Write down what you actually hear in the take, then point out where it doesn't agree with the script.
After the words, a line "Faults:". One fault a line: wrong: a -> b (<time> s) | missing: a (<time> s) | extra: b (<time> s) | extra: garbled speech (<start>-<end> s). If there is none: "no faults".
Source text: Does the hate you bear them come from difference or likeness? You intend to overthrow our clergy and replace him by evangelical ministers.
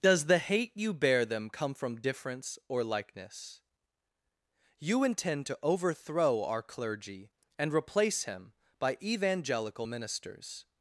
Does the hate you bear them come from difference or likeness? You intend to overthrow our clergy and replace him by evangelical ministers.
Faults:
no faults